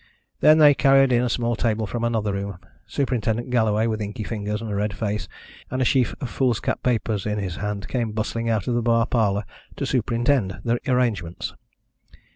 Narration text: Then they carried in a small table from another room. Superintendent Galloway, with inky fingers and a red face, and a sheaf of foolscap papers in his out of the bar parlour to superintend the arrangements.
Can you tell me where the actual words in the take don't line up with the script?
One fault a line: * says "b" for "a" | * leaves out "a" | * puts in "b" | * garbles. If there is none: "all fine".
* puts in "hand came bustling"